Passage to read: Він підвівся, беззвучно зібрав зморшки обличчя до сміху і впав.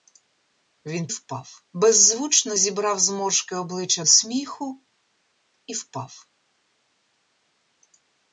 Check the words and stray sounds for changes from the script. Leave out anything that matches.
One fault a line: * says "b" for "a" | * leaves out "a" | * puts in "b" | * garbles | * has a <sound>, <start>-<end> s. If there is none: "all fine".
* says "впав" for "підвівся"
* leaves out "до"